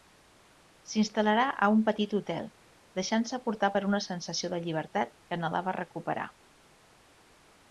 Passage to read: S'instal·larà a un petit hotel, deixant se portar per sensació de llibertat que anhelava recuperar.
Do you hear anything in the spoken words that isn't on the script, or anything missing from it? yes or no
yes